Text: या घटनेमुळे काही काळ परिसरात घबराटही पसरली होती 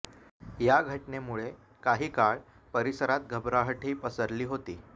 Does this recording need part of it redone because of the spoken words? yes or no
no